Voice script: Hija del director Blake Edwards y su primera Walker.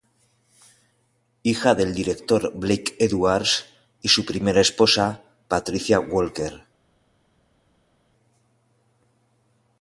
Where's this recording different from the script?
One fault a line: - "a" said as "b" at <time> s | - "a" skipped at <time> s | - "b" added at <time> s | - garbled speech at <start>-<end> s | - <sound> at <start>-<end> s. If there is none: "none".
- "esposa Patricia" added at 4.6 s